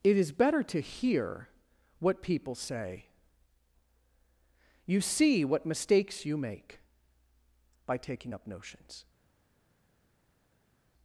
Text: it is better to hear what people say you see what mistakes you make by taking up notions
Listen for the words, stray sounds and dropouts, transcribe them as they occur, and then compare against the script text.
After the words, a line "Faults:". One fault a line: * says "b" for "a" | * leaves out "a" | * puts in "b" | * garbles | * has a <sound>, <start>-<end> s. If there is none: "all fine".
it is better to hear what people say you see what mistakes you make by taking up notions
Faults:
all fine